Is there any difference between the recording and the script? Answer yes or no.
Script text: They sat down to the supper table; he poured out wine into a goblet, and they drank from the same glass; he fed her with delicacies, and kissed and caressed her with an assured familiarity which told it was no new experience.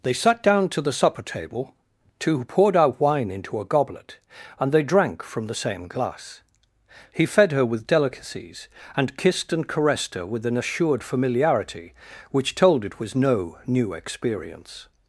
yes